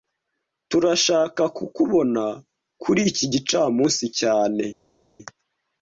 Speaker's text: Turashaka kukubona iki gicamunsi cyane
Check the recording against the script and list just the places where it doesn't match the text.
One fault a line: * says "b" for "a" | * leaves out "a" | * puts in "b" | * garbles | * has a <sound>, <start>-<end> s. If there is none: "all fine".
* puts in "kuri"